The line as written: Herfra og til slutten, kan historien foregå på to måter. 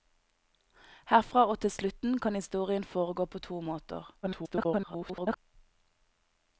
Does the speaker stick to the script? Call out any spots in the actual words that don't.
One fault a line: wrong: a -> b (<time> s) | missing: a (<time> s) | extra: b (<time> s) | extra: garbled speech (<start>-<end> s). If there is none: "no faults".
extra: garbled speech (4.2-5.4 s)